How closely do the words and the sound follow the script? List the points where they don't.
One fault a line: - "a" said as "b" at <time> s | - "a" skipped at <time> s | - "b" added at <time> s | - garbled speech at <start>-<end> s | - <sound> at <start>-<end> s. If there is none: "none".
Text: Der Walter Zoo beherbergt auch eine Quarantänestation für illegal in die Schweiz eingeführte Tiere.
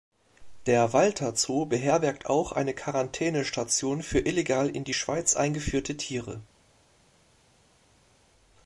none